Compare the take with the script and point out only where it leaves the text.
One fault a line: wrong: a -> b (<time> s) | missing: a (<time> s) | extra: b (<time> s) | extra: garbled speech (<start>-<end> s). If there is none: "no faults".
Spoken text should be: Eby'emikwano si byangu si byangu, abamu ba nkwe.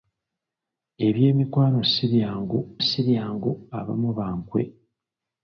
no faults